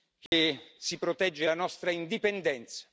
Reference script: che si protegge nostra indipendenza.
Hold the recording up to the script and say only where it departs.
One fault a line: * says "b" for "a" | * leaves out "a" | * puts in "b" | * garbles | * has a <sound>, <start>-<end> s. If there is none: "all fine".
* has a dropout, 0.3-0.3 s
* puts in "la"